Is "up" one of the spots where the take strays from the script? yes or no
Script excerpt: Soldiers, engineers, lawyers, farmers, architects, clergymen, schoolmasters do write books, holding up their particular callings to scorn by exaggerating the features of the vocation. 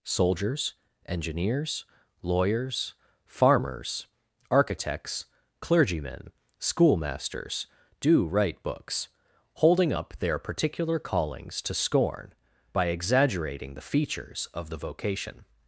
no